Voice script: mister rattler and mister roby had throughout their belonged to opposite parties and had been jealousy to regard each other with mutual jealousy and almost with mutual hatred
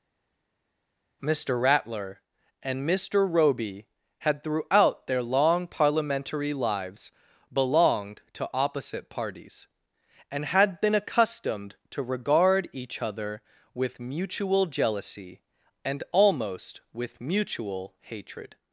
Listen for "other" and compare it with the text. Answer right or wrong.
right